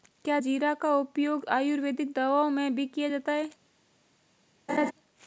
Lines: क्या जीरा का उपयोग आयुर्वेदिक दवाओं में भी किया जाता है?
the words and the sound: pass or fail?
fail